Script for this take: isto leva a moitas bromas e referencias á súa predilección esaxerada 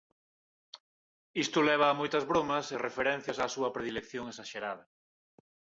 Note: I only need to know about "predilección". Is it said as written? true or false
true